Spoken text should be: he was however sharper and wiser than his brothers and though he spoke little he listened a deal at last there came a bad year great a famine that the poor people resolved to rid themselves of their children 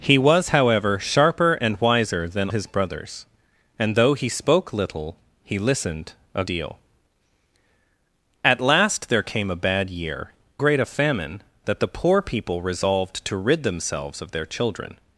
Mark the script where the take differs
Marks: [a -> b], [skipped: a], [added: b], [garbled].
he was however sharper and wiser than his brothers and though he spoke little he listened a deal at last there came a bad year great a famine that the poor people resolved to rid themselves of their children